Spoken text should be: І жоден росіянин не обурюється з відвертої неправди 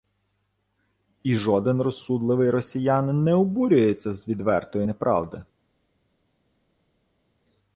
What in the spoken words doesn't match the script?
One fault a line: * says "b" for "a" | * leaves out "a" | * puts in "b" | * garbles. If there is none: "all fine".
* puts in "розсудливий"